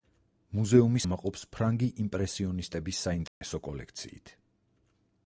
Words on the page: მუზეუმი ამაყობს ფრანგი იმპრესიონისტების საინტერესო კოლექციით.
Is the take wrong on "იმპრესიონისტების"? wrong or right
right